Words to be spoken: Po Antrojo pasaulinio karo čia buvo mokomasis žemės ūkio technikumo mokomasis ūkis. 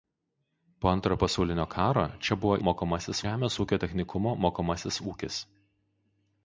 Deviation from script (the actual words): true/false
false